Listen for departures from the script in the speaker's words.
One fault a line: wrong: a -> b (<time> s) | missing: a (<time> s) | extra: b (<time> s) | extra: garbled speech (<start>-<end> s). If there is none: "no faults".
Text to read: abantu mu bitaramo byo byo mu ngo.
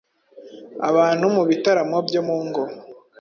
missing: byo (2.2 s)